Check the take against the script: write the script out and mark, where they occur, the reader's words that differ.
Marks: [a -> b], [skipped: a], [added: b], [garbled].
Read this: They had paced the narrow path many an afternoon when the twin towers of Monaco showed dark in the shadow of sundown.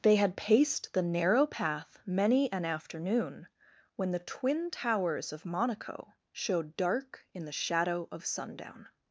They had paced the narrow path many an afternoon when the twin towers of Monaco showed dark in the shadow of sundown.